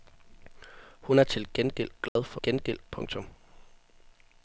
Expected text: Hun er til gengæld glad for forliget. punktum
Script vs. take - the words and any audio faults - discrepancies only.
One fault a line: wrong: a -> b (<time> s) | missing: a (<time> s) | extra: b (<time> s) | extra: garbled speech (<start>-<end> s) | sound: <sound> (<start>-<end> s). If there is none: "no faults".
sound: dropout (2.1-2.2 s)
wrong: forliget -> gengæld (2.4 s)